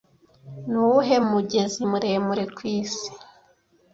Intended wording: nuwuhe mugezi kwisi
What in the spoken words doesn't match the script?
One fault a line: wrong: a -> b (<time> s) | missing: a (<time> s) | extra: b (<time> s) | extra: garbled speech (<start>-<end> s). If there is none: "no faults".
extra: muremure (1.9 s)